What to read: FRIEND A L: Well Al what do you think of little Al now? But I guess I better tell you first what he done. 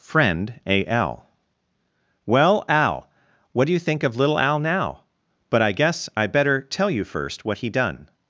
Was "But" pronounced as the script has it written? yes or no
yes